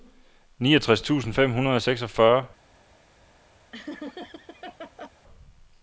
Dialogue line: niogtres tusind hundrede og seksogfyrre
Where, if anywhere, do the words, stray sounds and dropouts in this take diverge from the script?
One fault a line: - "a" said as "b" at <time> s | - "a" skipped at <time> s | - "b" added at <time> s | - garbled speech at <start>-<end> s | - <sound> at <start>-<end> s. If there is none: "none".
- "fem" added at 1.3 s
- laugh at 3.7-5.1 s